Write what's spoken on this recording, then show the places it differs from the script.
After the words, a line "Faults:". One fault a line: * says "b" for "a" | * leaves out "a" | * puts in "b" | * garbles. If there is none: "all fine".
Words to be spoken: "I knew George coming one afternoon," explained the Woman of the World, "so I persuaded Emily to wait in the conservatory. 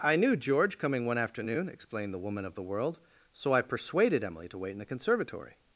"I knew George coming one afternoon," explained the Woman of the World, "so I persuaded Emily to wait in the conservatory.
Faults:
all fine